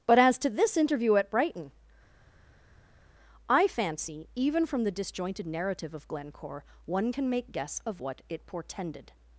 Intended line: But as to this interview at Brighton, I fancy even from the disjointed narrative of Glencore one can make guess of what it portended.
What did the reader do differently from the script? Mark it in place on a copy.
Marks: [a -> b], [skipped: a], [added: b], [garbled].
But as to this interview at Brighton, I fancy even from the disjointed narrative of Glencore one can make guess of what it portended.